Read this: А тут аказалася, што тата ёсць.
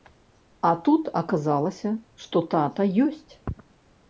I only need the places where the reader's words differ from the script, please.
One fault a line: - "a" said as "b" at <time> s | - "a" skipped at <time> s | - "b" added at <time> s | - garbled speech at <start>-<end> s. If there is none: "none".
none